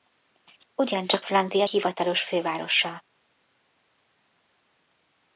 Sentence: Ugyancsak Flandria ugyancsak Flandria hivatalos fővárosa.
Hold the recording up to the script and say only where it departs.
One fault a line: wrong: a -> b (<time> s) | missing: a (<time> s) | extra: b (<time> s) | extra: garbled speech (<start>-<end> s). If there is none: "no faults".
missing: ugyancsak Flandria (1.6 s)